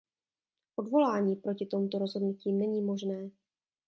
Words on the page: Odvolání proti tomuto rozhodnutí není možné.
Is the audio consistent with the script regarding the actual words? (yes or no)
yes